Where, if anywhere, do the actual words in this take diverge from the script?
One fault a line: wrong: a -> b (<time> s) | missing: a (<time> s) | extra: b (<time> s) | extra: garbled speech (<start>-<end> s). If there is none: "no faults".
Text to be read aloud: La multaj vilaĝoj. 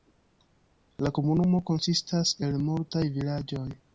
extra: komunumo konsistas el (1.2 s)